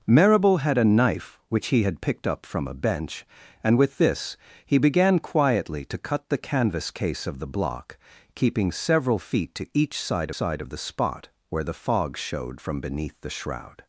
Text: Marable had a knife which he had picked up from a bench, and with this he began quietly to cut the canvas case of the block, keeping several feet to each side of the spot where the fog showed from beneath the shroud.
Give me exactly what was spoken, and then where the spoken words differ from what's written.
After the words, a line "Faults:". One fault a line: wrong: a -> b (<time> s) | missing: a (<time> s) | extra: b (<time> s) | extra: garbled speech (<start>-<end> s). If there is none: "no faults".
Marable had a knife which he had picked up from a bench, and with this he began quietly to cut the canvas case of the block, keeping several feet to each side side of the spot where the fog showed from beneath the shroud.
Faults:
extra: side (10.3 s)